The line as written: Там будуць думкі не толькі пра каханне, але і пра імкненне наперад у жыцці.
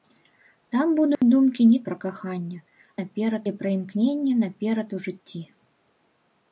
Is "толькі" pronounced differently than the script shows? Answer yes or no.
yes